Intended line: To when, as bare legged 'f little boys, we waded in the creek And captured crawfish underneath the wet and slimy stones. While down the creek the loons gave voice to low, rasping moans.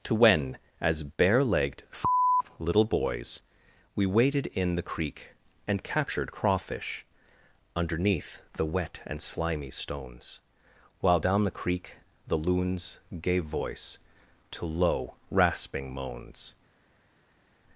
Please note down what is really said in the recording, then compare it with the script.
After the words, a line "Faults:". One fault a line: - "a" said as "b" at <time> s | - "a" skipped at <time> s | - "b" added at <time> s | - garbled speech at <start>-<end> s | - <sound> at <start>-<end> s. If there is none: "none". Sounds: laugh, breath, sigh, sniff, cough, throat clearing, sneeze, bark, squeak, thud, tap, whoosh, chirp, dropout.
To when, as bare legged 'f little boys, we waded in the creek And captured crawfish underneath the wet and slimy stones. While down the creek the loons gave voice to low, rasping moans.
Faults:
none